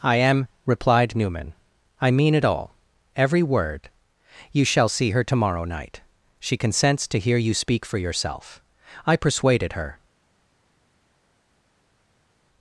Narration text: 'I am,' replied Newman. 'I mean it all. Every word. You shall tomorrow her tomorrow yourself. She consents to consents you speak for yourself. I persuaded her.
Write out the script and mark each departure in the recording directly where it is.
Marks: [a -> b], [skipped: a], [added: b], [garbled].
'I am,' replied Newman. 'I mean it all. Every word. You shall [tomorrow -> see] her tomorrow [yourself. -> night] She consents to [consents -> hear] you speak for yourself. I persuaded her.